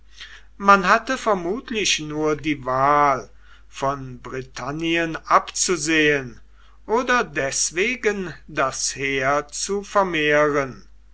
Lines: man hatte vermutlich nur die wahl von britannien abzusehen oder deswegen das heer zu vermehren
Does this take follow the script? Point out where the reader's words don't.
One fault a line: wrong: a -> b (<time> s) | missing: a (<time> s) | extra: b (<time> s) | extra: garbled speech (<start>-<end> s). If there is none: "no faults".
no faults